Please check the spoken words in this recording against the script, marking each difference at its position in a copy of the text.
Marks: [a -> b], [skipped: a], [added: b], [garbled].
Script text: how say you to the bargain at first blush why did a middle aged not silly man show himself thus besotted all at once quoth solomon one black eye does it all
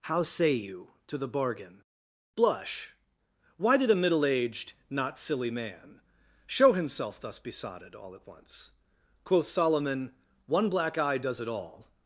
how say you to the bargain [skipped: at first] blush why did a middle aged not silly man show himself thus besotted all at once quoth solomon one black eye does it all